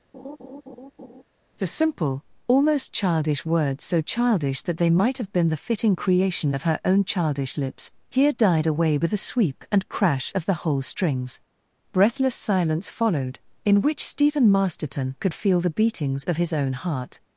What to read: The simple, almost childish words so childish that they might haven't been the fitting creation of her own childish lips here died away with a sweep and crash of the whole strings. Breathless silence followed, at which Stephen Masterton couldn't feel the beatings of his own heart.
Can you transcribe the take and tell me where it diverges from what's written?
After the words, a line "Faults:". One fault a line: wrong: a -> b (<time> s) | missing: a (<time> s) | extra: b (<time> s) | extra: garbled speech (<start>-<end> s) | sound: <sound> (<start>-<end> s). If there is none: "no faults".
The simple, almost childish words so childish that they might have been the fitting creation of her own childish lips here died away with a sweep and crash of the whole strings. Breathless silence followed, in which Stephen Masterton could feel the beatings of his own heart.
Faults:
sound: laugh (0.1-1.2 s)
wrong: haven't -> have (5.2 s)
wrong: at -> in (13.6 s)
wrong: couldn't -> could (15.2 s)